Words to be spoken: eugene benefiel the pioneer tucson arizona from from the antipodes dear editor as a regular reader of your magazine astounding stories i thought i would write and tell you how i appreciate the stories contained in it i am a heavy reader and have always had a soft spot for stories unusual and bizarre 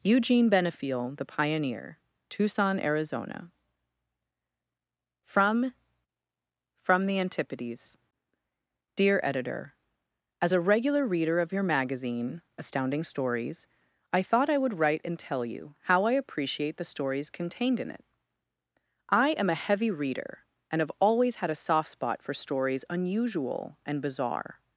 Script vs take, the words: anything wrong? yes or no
no